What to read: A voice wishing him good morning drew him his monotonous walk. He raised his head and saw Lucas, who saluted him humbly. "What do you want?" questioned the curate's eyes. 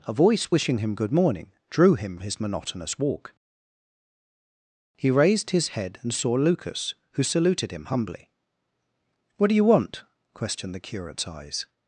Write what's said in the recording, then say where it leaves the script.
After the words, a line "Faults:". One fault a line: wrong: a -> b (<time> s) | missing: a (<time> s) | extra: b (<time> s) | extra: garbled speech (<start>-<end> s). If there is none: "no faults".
A voice wishing him good morning drew him his monotonous walk. He raised his head and saw Lucas, who saluted him humbly. "What do you want?" questioned the curate's eyes.
Faults:
no faults